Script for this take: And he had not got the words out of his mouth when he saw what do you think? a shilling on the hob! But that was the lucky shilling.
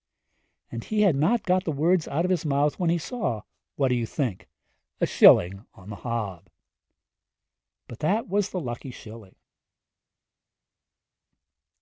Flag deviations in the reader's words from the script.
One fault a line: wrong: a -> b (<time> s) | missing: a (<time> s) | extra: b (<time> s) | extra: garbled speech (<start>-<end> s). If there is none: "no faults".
no faults